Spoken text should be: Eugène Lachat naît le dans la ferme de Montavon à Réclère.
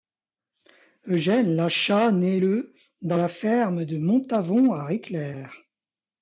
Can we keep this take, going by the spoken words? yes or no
yes